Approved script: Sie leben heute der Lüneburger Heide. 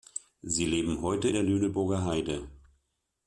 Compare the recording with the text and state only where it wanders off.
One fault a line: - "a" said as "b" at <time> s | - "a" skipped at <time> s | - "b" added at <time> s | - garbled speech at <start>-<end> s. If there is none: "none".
none